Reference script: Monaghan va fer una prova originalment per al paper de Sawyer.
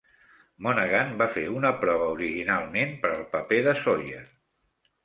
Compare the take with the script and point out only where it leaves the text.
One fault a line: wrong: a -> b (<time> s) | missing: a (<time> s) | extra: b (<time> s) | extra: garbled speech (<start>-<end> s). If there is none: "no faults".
no faults